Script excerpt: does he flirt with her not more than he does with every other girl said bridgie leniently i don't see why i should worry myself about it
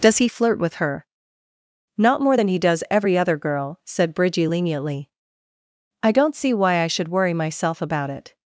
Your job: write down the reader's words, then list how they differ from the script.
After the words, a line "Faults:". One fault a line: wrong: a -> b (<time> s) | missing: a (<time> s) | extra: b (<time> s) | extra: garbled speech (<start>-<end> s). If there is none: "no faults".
does he flirt with her not more than he does every other girl said bridgie leniently i don't see why i should worry myself about it
Faults:
missing: with (2.8 s)